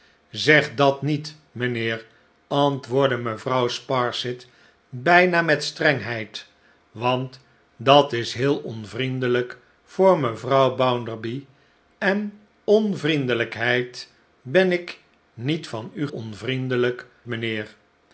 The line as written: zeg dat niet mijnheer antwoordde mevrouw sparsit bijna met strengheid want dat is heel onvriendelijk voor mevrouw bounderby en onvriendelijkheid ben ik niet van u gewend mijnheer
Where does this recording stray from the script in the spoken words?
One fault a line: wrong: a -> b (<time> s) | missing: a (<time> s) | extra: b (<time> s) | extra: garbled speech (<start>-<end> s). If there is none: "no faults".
wrong: gewend -> onvriendelijk (16.1 s)